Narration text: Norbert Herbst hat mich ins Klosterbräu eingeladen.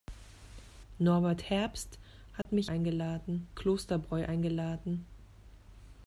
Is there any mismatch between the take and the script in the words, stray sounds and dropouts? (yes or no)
yes